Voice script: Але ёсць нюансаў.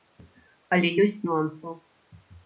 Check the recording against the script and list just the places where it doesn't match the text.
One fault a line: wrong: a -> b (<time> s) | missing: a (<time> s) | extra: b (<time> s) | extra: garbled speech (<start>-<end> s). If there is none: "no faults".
no faults